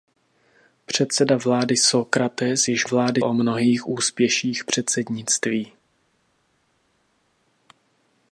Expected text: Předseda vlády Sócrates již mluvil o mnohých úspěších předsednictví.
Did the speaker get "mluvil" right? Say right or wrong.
wrong